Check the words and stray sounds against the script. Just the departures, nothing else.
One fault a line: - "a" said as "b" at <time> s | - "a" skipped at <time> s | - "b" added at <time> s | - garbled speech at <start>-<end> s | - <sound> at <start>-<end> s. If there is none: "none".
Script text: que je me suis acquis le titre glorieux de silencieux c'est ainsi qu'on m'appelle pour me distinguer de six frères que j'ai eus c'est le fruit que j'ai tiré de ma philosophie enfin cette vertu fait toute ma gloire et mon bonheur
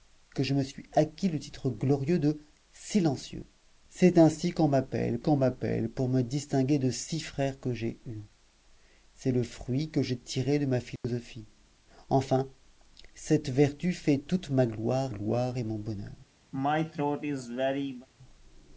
- "qu'on m'appelle" added at 5.2 s
- dropout at 11.0-11.0 s
- "gloire" added at 15.1 s
- throat clearing at 16.5-18.1 s